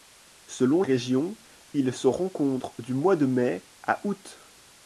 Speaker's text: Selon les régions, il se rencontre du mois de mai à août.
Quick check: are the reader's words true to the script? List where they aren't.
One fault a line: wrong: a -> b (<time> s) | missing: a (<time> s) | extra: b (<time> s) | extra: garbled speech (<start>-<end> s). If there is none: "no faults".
missing: les (0.8 s)